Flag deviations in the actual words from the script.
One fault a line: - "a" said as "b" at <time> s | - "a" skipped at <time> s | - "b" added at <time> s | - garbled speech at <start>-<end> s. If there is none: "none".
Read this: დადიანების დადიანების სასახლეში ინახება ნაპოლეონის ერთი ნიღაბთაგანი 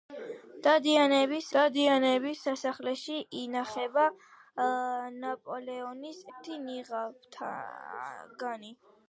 none